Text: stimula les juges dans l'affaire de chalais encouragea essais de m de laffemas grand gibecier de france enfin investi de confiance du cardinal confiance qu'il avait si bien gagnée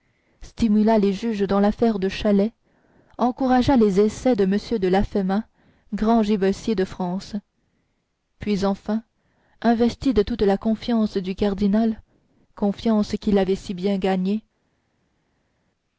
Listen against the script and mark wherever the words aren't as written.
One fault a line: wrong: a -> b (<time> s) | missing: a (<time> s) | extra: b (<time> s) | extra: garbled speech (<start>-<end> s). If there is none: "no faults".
extra: les (3.8 s)
extra: puis (8.4 s)
extra: toute la (10.2 s)